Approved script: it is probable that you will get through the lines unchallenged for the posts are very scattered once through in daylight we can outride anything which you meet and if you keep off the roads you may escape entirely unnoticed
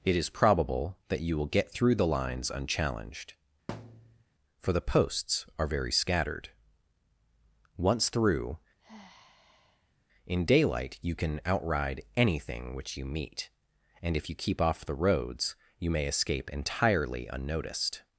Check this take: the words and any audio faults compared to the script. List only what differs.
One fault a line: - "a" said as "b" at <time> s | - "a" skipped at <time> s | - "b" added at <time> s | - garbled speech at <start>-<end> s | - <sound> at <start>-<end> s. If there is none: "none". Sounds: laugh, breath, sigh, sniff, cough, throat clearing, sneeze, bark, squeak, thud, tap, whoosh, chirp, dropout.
- thud at 3.7-4.2 s
- sigh at 8.8-9.9 s
- "we" said as "you" at 11.0 s